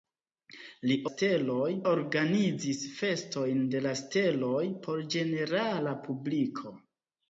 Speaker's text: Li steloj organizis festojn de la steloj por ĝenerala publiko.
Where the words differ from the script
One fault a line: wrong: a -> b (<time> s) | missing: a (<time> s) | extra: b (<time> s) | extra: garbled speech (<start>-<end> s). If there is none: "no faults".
no faults